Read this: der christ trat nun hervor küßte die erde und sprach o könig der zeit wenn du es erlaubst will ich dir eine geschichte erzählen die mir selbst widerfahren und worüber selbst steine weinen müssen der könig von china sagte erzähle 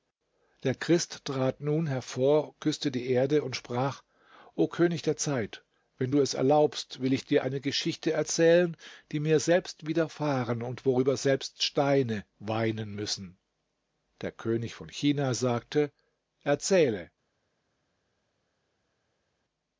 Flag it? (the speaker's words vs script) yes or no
no